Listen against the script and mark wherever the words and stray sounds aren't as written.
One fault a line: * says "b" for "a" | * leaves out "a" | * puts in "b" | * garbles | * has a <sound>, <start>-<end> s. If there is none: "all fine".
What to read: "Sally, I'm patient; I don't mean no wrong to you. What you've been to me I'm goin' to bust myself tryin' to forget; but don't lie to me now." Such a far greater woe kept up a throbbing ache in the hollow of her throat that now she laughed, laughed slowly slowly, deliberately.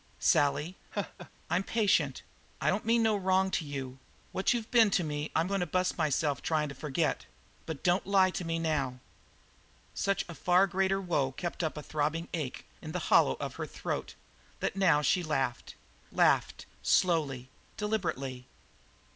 * has a laugh, 0.9-1.3 s
* leaves out "slowly"